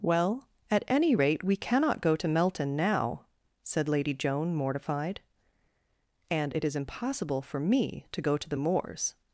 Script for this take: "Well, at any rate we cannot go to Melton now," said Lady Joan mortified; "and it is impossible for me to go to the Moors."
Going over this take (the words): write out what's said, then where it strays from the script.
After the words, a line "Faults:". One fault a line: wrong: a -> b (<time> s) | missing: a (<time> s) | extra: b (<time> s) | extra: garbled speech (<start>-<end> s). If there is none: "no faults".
"Well, at any rate we cannot go to Melton now," said Lady Joan mortified; "and it is impossible for me to go to the Moors."
Faults:
no faults